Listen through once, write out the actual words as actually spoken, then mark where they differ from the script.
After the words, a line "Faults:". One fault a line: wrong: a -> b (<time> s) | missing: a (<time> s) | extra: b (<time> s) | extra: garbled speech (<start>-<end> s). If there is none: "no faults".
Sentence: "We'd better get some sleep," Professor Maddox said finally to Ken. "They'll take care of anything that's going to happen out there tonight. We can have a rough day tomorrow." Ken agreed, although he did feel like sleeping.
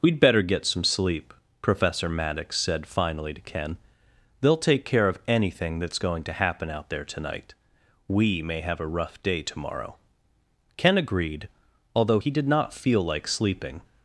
"We'd better get some sleep," Professor Maddox said finally to Ken. "They'll take care of anything that's going to happen out there tonight. We may have a rough day tomorrow." Ken agreed, although he did not feel like sleeping.
Faults:
wrong: can -> may (8.4 s)
extra: not (12.5 s)